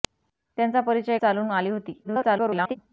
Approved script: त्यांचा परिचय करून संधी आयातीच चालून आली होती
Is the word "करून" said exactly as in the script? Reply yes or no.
no